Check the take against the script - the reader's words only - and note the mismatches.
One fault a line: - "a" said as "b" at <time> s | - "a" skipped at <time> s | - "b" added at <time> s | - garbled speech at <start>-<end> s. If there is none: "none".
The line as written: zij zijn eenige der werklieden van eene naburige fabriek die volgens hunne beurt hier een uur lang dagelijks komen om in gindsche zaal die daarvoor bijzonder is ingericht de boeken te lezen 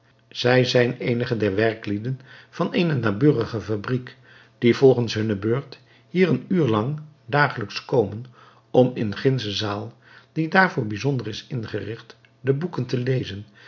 none